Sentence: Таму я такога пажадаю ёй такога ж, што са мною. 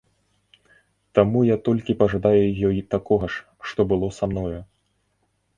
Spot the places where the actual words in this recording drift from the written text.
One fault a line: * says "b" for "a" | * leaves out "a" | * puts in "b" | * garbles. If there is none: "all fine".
* says "толькі" for "такога"
* puts in "было"